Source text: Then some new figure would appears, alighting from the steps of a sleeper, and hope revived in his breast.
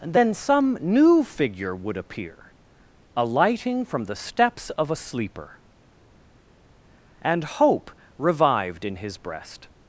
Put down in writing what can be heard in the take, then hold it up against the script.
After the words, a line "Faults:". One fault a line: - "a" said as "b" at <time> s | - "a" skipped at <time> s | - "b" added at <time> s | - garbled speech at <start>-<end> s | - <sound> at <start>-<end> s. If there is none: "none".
Then some new figure would appear, alighting from the steps of a sleeper, and hope revived in his breast.
Faults:
- "appears" said as "appear" at 1.9 s